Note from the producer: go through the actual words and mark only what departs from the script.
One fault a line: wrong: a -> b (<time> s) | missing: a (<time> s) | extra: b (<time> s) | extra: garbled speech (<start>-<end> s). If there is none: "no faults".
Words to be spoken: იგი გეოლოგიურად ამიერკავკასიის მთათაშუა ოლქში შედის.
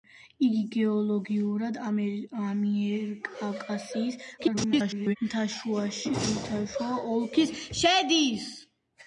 extra: garbled speech (4.4-5.2 s)